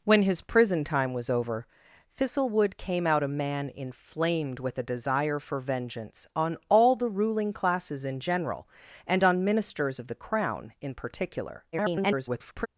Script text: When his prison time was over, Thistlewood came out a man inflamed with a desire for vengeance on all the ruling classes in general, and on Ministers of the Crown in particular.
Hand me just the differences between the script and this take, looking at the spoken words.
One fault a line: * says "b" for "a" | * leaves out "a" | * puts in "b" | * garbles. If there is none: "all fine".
* garbles